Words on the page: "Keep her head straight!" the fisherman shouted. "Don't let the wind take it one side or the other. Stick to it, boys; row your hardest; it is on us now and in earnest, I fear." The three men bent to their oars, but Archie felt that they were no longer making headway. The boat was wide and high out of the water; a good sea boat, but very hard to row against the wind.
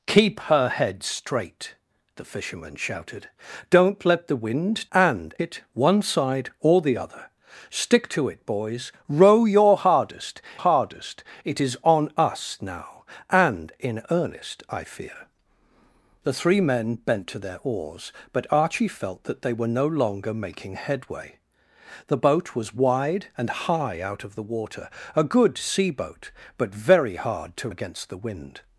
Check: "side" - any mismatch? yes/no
no